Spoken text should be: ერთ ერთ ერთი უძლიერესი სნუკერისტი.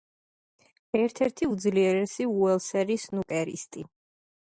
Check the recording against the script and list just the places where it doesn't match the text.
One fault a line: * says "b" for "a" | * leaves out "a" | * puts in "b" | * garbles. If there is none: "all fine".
* leaves out "ერთ"
* puts in "უელსელი"